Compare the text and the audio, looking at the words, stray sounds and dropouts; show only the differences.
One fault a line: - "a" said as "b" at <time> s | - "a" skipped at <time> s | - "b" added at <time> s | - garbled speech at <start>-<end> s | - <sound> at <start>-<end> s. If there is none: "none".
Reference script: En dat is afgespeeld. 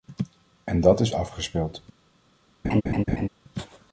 - laugh at 2.6-3.3 s